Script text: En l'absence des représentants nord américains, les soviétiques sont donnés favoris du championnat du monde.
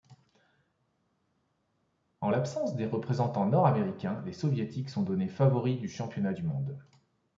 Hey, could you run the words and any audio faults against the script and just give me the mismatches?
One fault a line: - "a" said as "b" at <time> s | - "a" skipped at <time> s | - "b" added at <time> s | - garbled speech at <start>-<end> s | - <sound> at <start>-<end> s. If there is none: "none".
none